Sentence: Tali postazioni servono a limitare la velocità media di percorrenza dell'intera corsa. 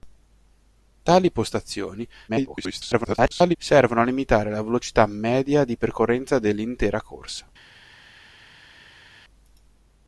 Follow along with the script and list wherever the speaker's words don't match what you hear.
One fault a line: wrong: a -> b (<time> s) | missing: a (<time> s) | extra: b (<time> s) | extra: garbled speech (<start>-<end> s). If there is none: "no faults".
extra: garbled speech (2.3-3.6 s)